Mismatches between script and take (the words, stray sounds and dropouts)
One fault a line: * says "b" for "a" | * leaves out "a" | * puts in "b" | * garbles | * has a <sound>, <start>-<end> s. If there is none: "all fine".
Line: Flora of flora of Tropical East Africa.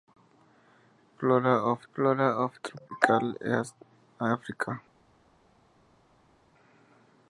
all fine